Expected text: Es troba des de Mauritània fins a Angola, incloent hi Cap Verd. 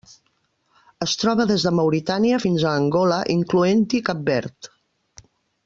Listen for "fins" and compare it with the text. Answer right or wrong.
right